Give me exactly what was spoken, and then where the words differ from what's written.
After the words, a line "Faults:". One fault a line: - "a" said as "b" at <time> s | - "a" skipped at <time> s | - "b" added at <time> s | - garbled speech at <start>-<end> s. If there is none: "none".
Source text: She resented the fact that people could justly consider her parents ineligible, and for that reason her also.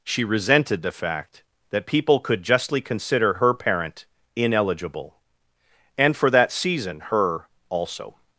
She resented the fact that people could justly consider her parent ineligible, and for that season her also.
Faults:
- "parents" said as "parent" at 3.5 s
- "reason" said as "season" at 6.5 s